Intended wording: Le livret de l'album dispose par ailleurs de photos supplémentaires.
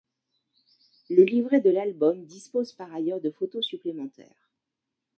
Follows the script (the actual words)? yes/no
yes